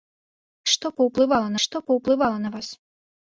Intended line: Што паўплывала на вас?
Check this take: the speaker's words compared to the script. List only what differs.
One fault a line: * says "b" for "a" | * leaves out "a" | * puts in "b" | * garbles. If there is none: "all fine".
* puts in "што паўплывала"